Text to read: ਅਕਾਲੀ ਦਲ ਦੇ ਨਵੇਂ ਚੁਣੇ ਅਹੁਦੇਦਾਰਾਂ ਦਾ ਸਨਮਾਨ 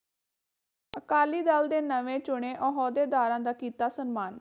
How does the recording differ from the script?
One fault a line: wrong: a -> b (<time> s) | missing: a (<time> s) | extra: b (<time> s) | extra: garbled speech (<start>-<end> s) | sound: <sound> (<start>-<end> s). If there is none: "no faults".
extra: ਕੀਤਾ (3.5 s)